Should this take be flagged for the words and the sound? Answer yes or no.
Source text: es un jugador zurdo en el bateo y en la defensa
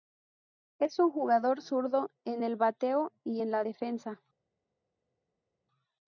no